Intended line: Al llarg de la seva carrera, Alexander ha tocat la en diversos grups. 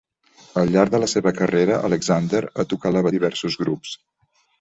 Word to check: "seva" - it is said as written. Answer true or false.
true